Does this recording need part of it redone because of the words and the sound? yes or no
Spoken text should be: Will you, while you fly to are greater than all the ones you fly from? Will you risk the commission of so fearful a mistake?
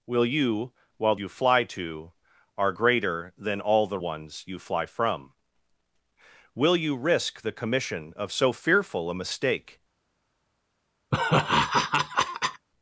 yes